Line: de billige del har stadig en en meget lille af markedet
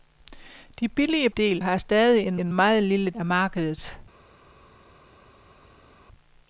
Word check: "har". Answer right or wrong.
right